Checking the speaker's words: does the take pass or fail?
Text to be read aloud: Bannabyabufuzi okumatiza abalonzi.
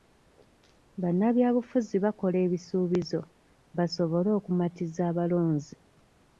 fail